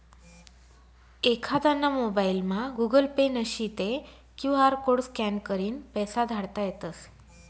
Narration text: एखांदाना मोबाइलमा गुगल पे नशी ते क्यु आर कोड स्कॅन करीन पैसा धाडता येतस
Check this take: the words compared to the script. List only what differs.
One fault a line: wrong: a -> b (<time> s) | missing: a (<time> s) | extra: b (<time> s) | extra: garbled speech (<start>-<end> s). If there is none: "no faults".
no faults